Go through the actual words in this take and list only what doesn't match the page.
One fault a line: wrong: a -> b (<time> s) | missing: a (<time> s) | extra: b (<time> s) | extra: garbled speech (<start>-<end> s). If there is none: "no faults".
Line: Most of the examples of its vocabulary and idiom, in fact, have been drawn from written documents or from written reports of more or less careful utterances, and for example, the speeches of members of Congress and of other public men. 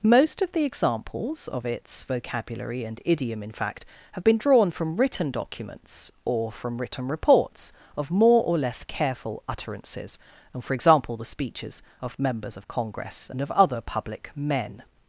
no faults